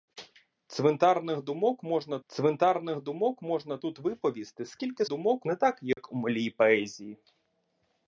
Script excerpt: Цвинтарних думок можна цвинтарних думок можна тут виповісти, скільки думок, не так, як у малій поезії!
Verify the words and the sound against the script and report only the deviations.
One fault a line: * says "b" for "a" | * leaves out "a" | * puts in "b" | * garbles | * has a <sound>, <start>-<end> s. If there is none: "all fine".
* has a dropout, 5.9-6.0 s